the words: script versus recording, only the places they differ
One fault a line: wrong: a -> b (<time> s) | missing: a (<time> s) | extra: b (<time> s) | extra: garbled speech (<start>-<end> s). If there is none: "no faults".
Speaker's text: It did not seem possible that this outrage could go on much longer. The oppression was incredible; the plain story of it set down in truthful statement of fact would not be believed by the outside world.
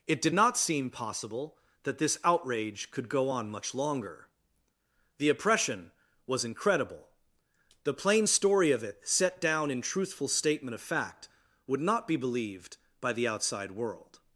no faults